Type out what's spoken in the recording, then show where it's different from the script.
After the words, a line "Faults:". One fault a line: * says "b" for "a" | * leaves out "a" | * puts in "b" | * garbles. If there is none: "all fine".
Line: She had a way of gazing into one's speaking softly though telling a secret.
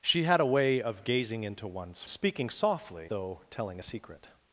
She had a way of gazing into one's speaking softly though telling a secret.
Faults:
all fine